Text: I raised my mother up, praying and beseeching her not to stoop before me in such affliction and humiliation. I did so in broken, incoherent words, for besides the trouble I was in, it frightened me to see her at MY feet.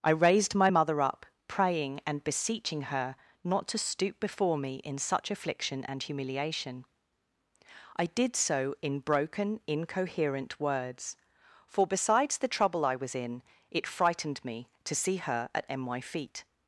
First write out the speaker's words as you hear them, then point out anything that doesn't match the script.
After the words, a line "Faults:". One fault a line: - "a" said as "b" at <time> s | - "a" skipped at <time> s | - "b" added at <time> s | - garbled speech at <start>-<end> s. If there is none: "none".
I raised my mother up, praying and beseeching her not to stoop before me in such affliction and humiliation. I did so in broken, incoherent words, for besides the trouble I was in, it frightened me to see her at MY feet.
Faults:
none